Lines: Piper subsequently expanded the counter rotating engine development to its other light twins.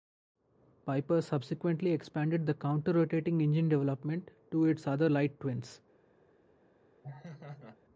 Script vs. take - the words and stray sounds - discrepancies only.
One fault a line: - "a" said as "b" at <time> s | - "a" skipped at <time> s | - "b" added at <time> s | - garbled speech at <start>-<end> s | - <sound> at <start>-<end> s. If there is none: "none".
- laugh at 7.0-7.8 s